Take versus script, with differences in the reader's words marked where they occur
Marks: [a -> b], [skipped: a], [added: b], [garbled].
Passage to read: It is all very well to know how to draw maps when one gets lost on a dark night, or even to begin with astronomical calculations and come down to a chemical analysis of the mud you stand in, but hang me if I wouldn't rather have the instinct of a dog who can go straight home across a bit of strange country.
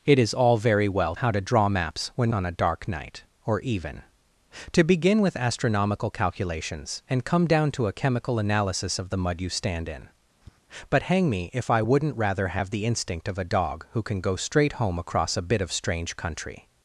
It is all very well [skipped: to know] how to draw maps when [skipped: one gets lost] on a dark night, or even to begin with astronomical calculations and come down to a chemical analysis of the mud you stand in, but hang me if I wouldn't rather have the instinct of a dog who can go straight home across a bit of strange country.